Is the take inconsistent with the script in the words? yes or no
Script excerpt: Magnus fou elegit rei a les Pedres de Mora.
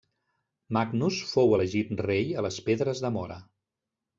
no